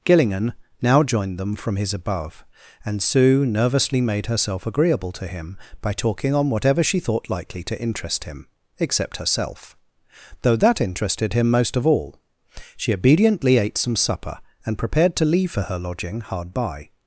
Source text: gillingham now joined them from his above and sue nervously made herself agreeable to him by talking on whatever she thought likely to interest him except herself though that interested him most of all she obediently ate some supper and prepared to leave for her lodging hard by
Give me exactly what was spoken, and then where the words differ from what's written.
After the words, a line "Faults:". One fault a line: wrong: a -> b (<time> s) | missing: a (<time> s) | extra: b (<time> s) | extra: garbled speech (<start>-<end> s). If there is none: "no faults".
gillingham now joined them from his above and sue nervously made herself agreeable to him by talking on whatever she thought likely to interest him except herself though that interested him most of all she obediently ate some supper and prepared to leave for her lodging hard by
Faults:
no faults